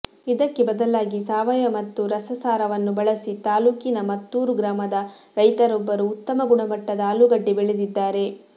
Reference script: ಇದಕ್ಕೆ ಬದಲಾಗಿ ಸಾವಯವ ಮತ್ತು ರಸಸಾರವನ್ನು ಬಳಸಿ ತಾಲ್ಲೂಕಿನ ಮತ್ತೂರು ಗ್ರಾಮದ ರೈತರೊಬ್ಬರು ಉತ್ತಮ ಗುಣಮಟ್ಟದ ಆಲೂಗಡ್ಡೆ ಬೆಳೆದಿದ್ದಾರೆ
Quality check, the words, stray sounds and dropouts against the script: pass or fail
pass